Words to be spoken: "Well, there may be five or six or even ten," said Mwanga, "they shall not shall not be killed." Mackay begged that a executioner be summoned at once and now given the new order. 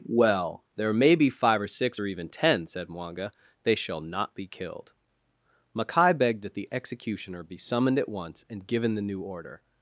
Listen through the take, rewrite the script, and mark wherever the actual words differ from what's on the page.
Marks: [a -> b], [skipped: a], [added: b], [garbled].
"Well, there may be five or six or even ten," said Mwanga, "they shall not [skipped: shall not] be killed." Mackay begged that [a -> the] executioner be summoned at once and [skipped: now] given the new order.